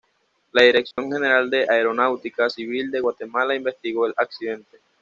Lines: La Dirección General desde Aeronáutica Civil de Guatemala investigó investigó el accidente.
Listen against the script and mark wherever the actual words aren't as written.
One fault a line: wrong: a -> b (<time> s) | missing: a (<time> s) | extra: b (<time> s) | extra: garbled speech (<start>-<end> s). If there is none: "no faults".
wrong: desde -> de (1.5 s)
missing: investigó (4.0 s)